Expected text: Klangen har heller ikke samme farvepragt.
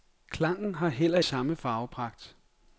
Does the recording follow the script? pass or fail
fail